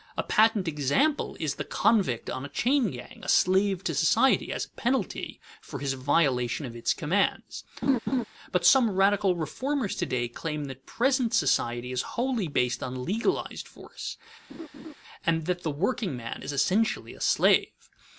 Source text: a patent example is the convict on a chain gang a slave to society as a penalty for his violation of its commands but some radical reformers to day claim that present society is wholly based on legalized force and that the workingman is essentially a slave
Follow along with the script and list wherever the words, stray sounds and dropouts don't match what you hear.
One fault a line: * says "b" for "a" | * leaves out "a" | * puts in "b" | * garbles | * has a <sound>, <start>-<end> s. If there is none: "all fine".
* has a laugh, 7.8-8.2 s
* has a laugh, 14.5-14.9 s